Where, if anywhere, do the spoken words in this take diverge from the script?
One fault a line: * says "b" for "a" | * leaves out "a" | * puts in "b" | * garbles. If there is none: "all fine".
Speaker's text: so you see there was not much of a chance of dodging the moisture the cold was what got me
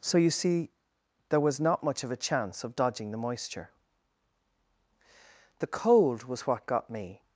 all fine